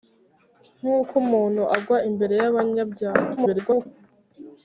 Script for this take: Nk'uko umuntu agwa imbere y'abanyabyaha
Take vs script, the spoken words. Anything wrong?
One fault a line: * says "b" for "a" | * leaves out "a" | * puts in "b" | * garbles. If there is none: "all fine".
* garbles